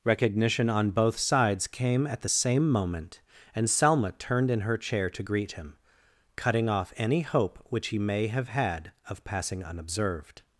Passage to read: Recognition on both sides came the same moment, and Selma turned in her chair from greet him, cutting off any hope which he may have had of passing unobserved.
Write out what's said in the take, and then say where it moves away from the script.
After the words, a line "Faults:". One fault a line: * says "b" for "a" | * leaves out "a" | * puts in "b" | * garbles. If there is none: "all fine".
Recognition on both sides came at the same moment, and Selma turned in her chair to greet him, cutting off any hope which he may have had of passing unobserved.
Faults:
* puts in "at"
* says "to" for "from"